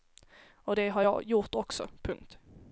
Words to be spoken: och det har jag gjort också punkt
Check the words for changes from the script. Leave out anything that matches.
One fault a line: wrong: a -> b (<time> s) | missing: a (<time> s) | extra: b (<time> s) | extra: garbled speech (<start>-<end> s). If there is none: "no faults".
no faults